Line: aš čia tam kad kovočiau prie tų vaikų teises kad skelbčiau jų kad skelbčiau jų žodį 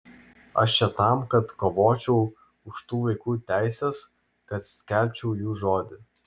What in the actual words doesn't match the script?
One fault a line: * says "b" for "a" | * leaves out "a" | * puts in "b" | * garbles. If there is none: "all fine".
* says "už" for "prie"
* leaves out "kad skelbčiau jų"